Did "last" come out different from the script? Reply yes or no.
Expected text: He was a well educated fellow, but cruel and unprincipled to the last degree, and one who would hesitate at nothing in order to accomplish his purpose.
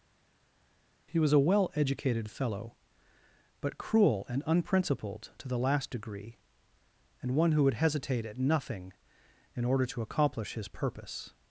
no